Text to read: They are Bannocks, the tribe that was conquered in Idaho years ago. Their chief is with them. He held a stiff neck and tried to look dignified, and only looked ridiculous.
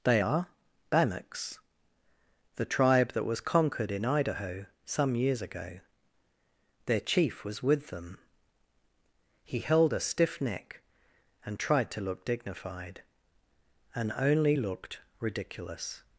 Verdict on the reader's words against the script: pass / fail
fail